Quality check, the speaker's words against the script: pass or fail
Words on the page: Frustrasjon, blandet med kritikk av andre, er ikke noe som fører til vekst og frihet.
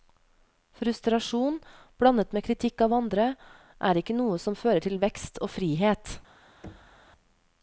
pass